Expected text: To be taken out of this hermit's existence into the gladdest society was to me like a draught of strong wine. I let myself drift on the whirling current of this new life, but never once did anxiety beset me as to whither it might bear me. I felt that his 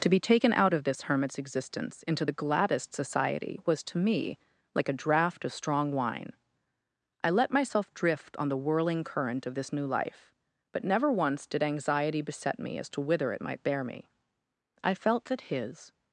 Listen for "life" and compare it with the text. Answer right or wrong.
right